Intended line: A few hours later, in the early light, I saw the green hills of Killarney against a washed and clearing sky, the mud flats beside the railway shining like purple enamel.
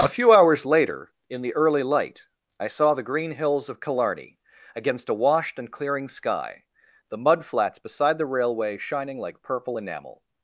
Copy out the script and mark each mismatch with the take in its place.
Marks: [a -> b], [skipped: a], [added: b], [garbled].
A few hours later, in the early light, I saw the green hills of Killarney against a washed and clearing sky, the mud flats beside the railway shining like purple enamel.